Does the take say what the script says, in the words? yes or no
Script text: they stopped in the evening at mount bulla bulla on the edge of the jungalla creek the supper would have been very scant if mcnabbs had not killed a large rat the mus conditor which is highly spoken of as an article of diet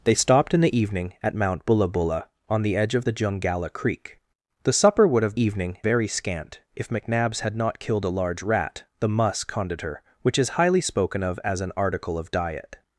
no